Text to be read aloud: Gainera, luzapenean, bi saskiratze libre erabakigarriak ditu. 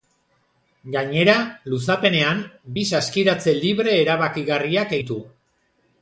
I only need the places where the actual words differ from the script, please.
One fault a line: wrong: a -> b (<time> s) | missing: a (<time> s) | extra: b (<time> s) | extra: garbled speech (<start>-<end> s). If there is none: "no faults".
no faults